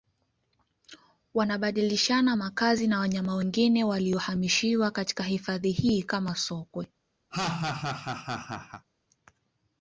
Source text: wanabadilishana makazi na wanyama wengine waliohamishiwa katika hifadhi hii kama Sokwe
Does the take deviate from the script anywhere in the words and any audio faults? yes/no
yes